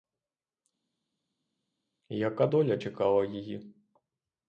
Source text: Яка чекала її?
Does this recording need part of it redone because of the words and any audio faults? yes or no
yes